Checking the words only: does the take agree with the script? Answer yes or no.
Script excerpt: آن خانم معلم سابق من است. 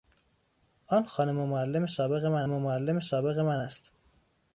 no